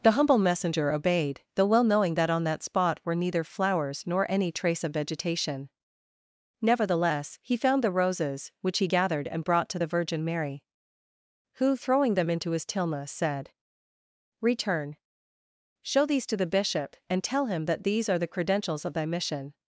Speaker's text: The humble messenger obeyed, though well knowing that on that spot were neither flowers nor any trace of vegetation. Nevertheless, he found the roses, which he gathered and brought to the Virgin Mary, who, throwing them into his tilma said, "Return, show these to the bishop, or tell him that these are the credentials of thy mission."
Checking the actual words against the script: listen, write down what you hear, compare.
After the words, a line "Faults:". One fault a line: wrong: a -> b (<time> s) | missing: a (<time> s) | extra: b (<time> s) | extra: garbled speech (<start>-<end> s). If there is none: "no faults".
The humble messenger obeyed, though well knowing that on that spot were neither flowers nor any trace of vegetation. Nevertheless, he found the roses, which he gathered and brought to the Virgin Mary, who, throwing them into his tilma said, "Return, show these to the bishop, and tell him that these are the credentials of thy mission."
Faults:
wrong: or -> and (17.1 s)